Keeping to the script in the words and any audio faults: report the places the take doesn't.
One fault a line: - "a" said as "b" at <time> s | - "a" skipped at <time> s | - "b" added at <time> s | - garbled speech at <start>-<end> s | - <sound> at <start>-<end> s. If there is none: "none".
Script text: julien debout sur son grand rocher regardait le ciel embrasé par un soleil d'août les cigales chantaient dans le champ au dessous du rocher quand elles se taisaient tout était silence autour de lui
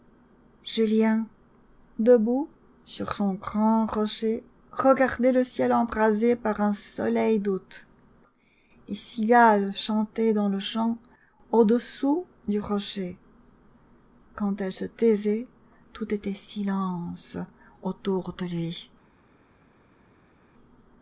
none